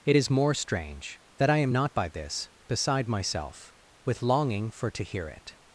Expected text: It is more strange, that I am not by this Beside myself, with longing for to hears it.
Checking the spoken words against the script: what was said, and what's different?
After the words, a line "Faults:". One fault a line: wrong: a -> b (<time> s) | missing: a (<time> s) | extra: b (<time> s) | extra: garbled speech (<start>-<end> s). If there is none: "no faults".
It is more strange, that I am not by this Beside myself, with longing for to hear it.
Faults:
wrong: hears -> hear (5.0 s)